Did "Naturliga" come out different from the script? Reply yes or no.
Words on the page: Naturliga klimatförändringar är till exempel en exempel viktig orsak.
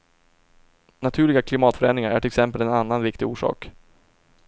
no